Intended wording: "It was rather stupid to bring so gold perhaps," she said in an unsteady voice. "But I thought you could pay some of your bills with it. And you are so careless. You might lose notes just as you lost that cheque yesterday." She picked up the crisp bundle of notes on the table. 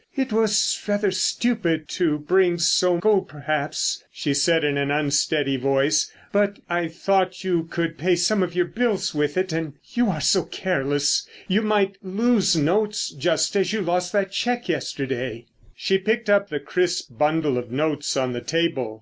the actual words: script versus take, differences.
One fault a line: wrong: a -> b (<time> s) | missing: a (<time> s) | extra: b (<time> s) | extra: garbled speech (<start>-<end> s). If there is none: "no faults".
no faults